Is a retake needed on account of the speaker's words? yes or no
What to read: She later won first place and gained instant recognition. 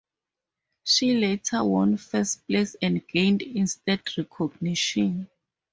no